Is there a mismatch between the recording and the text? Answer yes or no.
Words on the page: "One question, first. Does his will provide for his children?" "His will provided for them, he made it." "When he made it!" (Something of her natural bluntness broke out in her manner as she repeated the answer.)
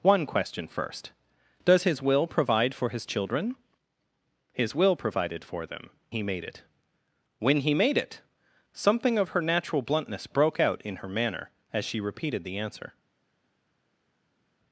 no